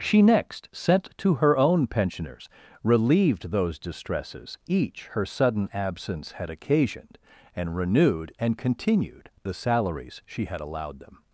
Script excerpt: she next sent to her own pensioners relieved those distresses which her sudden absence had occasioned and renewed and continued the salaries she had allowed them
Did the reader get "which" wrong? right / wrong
wrong